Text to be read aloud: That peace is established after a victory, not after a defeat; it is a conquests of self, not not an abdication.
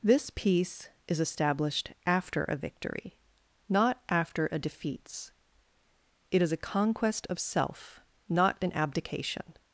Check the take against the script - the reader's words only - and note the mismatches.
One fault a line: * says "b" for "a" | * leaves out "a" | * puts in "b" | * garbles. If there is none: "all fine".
* says "This" for "That"
* says "conquest" for "conquests"
* leaves out "not"